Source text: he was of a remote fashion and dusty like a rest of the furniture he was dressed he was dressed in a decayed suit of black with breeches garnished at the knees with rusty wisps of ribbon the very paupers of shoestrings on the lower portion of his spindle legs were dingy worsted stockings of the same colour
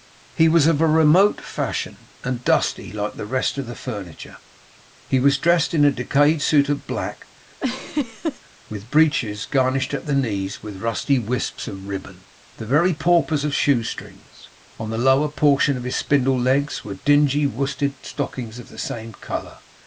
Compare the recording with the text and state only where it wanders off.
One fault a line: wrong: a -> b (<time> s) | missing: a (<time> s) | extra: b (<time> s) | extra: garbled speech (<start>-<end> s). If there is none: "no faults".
wrong: a -> the (3.2 s)
missing: he was dressed (5.8 s)